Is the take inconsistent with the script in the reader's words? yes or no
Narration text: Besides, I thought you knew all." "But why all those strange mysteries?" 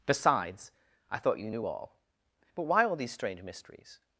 yes